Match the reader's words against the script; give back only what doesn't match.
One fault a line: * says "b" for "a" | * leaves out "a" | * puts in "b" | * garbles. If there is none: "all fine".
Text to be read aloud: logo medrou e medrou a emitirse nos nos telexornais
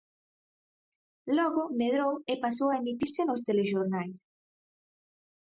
* says "pasou" for "medrou"
* leaves out "nos"